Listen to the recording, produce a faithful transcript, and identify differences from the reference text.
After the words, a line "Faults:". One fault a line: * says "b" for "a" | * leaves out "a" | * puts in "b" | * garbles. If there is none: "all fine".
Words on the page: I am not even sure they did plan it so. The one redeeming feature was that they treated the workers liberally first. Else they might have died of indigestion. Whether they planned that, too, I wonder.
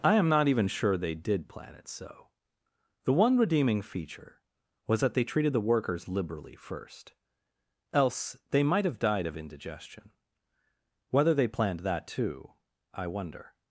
I am not even sure they did plan it so. The one redeeming feature was that they treated the workers liberally first. Else they might have died of indigestion. Whether they planned that, too, I wonder.
Faults:
all fine